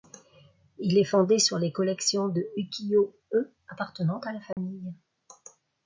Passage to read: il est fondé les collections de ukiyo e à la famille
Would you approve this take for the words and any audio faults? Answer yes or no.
no